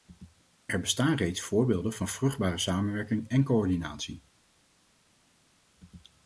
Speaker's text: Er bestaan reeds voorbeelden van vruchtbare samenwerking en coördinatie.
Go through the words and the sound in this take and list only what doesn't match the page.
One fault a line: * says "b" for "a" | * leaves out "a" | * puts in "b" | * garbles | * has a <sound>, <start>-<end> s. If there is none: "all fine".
all fine